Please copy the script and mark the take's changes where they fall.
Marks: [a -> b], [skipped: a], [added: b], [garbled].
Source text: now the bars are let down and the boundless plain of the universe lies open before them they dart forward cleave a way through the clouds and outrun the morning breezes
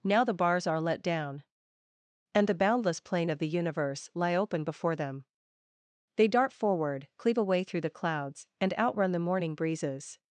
now the bars are let down and the boundless plain of the universe [lies -> lie] open before them they dart forward cleave a way through the clouds and outrun the morning breezes